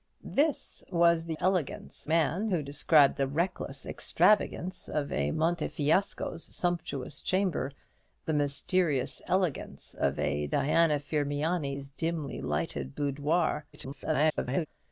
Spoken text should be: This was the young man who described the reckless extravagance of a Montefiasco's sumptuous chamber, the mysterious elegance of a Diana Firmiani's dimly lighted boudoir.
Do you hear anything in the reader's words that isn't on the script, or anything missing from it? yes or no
yes